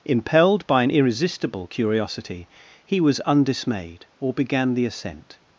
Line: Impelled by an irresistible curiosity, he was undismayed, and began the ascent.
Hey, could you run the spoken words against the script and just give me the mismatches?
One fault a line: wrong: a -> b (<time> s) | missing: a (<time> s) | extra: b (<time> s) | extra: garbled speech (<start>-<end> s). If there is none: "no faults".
wrong: and -> or (4.2 s)